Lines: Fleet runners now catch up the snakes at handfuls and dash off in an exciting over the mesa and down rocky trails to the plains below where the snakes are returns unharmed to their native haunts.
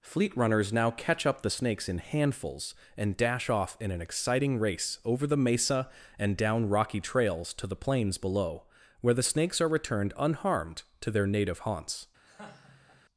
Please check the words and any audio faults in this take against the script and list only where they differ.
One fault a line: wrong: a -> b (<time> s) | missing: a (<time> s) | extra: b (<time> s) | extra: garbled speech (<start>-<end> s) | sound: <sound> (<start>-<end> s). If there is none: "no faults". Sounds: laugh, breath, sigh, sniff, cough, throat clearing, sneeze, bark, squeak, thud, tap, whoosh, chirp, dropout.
wrong: at -> in (1.9 s)
extra: race (4.6 s)
wrong: returns -> returned (9.7 s)
sound: laugh (12.2-13.0 s)